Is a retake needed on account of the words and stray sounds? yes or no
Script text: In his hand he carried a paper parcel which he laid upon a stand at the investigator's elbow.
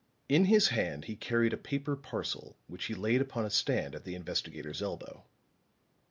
no